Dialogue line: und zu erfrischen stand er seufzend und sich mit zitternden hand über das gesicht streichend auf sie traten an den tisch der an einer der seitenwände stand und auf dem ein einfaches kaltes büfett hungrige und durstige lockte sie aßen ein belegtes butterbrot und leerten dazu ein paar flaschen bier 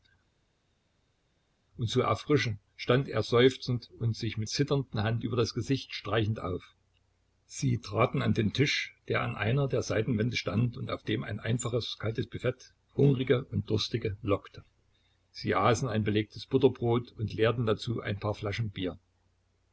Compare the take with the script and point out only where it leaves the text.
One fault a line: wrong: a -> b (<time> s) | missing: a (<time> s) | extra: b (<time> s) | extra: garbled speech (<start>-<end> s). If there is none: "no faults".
no faults